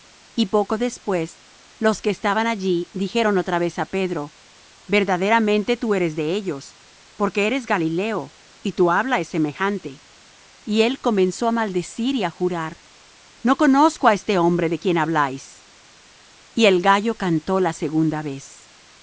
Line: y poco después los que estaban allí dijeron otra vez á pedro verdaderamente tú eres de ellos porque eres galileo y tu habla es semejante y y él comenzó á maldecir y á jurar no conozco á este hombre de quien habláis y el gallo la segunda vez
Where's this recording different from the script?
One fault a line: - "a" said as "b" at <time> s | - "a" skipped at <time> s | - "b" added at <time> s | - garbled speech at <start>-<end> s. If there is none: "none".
- "y" skipped at 10.8 s
- "cantó" added at 17.2 s